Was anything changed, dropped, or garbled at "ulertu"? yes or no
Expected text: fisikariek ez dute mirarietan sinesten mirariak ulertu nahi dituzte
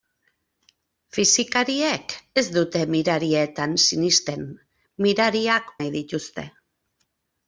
yes